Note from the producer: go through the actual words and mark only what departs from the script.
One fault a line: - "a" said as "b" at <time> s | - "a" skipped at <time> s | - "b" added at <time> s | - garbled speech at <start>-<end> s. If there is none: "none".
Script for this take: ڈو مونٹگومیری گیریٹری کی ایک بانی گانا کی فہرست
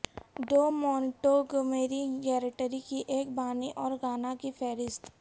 - "اور" added at 3.8 s